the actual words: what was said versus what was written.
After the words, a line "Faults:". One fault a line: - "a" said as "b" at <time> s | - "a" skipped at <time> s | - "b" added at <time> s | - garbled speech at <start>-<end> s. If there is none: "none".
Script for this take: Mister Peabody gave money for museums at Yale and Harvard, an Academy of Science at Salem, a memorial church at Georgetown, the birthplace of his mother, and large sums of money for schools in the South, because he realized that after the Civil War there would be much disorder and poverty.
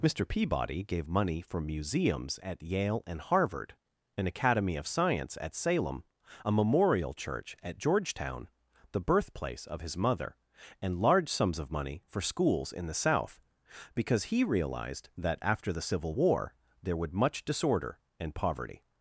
Mister Peabody gave money for museums at Yale and Harvard, an Academy of Science at Salem, a memorial church at Georgetown, the birthplace of his mother, and large sums of money for schools in the South, because he realized that after the Civil War there would much disorder and poverty.
Faults:
- "be" skipped at 17.1 s